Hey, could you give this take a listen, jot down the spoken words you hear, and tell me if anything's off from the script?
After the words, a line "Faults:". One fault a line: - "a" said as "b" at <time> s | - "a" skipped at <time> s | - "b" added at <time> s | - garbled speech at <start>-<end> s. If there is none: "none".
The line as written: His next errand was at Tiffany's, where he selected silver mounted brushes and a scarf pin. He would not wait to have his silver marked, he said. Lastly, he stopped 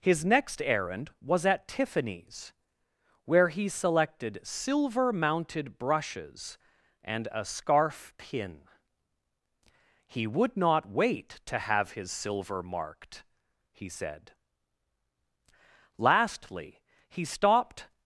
His next errand was at Tiffany's, where he selected silver mounted brushes and a scarf pin. He would not wait to have his silver marked, he said. Lastly, he stopped
Faults:
none